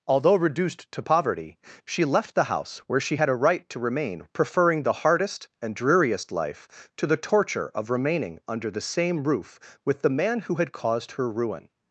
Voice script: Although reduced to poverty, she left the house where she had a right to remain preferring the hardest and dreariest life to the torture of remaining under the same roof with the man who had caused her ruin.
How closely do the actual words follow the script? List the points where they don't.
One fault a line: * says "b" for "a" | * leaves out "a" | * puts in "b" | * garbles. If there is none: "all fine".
all fine